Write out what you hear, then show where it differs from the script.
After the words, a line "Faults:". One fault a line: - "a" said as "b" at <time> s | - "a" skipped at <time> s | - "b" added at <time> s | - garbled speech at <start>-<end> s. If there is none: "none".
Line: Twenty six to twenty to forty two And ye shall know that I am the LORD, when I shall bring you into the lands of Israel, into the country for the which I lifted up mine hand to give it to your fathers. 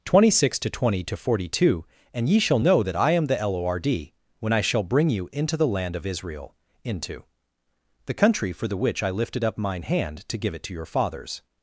Twenty six to twenty to forty two And ye shall know that I am the LORD, when I shall bring you into the land of Israel, into the country for the which I lifted up mine hand to give it to your fathers.
Faults:
- "lands" said as "land" at 5.7 s